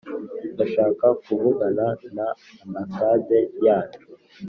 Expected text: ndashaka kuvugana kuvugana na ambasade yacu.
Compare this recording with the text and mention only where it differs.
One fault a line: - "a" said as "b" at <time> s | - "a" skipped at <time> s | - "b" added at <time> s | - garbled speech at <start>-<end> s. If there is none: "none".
- "kuvugana" skipped at 1.9 s